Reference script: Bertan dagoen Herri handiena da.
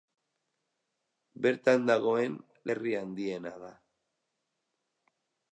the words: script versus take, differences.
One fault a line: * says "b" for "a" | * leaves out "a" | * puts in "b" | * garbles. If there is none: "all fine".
all fine